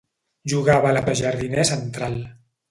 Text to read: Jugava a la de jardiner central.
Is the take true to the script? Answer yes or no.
yes